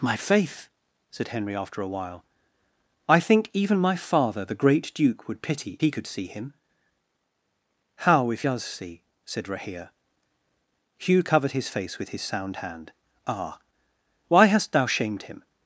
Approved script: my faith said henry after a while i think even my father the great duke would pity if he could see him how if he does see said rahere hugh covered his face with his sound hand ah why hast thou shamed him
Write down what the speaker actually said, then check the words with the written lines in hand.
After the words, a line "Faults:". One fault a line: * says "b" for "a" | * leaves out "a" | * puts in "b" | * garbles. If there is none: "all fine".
my faith said henry after a while i think even my father the great duke would pity he could see him how if does see said rahere hugh covered his face with his sound hand ah why hast thou shamed him
Faults:
* leaves out "if"
* leaves out "he"